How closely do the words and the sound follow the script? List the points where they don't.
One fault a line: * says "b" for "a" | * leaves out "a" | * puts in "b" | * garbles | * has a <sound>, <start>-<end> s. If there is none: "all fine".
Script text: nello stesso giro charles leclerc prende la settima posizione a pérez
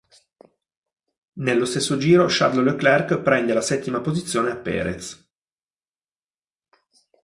all fine